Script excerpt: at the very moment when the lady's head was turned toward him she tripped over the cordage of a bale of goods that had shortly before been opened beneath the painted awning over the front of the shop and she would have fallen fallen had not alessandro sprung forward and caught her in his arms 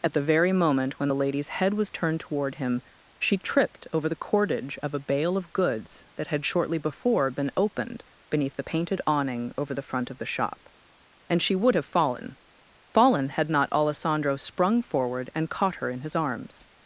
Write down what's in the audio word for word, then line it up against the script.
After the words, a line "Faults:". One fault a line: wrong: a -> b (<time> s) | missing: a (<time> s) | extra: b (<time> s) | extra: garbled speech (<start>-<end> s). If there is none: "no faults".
at the very moment when the lady's head was turned toward him she tripped over the cordage of a bale of goods that had shortly before been opened beneath the painted awning over the front of the shop and she would have fallen fallen had not alessandro sprung forward and caught her in his arms
Faults:
no faults